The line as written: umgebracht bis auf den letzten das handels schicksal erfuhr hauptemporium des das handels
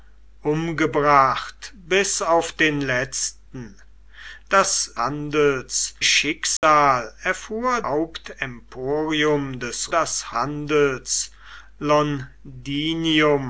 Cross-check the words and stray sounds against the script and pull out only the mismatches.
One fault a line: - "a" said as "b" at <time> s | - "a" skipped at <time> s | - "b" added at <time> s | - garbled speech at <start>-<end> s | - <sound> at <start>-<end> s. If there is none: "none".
- dropout at 6.6-6.6 s